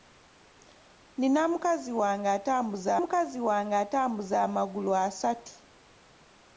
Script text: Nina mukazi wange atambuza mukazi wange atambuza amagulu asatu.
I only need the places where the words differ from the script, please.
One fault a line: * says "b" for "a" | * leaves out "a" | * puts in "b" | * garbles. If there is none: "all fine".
all fine